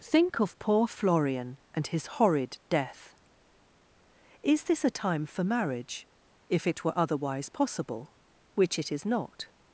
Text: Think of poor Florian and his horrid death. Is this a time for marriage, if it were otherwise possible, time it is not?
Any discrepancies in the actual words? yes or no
yes